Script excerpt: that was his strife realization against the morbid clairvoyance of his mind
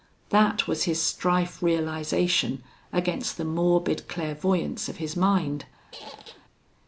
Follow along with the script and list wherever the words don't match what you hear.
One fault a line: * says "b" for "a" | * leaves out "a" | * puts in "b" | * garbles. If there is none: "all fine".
all fine